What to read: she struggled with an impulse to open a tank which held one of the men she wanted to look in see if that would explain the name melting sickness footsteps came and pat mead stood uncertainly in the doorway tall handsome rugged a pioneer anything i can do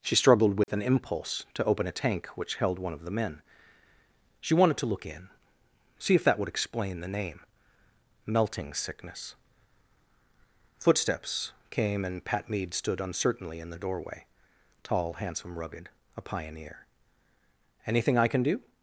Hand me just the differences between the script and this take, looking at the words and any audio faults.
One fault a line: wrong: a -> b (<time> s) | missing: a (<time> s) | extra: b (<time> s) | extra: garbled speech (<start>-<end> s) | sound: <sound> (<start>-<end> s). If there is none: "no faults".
sound: dropout (0.6-0.7 s)